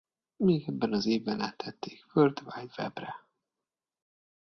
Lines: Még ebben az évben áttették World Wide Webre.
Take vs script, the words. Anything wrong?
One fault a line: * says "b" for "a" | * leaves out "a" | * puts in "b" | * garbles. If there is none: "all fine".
all fine